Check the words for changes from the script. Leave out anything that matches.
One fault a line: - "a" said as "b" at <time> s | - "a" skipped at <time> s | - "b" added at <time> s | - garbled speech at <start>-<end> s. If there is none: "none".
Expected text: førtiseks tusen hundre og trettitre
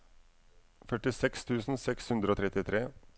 - "seks" added at 1.9 s